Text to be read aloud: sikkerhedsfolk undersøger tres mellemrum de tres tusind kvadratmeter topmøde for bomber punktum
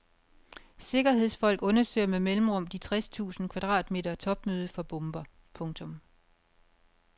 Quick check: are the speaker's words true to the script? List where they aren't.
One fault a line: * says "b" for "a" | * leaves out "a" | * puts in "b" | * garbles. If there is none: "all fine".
* says "med" for "tres"